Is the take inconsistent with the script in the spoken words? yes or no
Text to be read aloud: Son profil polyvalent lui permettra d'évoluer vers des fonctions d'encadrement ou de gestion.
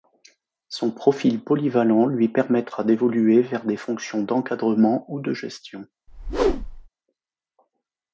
no